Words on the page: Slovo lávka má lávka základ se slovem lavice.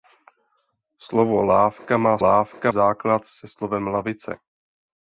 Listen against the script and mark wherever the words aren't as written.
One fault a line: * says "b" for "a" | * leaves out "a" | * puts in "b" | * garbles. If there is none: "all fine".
all fine